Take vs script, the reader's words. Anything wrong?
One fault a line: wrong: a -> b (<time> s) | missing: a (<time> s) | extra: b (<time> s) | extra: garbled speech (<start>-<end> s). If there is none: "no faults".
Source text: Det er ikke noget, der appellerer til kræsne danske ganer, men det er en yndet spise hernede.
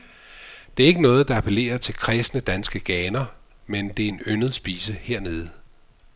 no faults